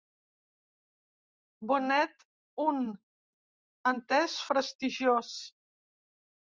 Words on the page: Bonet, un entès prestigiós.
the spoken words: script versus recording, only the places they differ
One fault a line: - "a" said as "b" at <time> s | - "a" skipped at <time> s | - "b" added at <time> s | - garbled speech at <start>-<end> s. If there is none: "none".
none